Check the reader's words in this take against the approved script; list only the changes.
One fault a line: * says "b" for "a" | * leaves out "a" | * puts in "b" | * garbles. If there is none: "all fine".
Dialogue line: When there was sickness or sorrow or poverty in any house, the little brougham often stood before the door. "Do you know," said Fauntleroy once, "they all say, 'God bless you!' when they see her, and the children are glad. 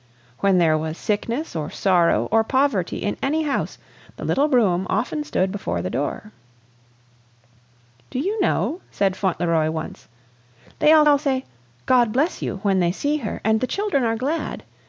* puts in "all"